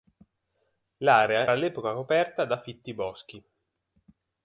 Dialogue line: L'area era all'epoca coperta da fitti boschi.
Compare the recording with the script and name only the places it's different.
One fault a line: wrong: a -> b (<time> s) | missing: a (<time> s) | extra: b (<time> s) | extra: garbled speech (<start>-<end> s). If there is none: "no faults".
missing: era (1.5 s)